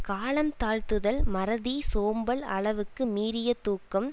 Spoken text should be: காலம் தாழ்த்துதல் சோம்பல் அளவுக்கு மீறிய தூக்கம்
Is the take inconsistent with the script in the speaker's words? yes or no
yes